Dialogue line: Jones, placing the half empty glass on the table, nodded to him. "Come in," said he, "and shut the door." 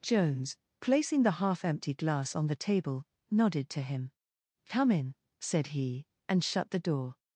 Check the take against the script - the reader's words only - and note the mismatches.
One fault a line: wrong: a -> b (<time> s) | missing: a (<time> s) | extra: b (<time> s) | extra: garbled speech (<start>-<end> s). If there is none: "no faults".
no faults